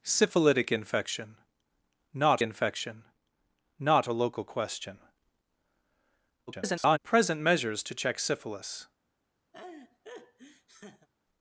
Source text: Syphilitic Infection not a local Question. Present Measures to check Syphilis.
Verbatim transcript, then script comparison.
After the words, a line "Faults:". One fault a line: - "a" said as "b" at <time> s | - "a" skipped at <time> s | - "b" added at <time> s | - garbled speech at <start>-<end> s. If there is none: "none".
Syphilitic Infection not Infection not a local Question. [garbled] Present Measures to check Syphilis.
Faults:
- "Infection not" added at 2.4 s
- garbled speech at 6.5-7.0 s